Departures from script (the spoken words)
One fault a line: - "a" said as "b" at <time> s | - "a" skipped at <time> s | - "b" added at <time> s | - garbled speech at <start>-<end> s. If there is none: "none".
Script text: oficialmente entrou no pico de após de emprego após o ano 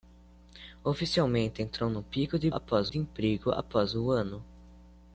none